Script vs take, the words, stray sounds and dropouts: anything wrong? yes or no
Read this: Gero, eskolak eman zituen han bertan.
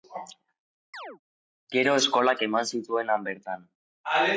yes